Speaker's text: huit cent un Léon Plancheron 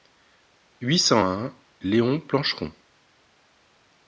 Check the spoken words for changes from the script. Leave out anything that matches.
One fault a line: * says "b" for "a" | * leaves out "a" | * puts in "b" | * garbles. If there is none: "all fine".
all fine